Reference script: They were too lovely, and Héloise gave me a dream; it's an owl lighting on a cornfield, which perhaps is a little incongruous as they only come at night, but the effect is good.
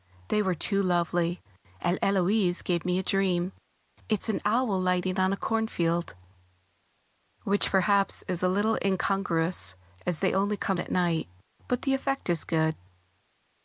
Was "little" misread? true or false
false